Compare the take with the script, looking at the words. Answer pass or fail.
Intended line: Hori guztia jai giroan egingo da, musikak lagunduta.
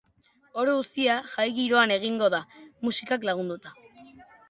pass